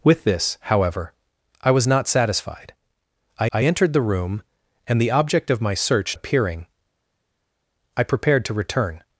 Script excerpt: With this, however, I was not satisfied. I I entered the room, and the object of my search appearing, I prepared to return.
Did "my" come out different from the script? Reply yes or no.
no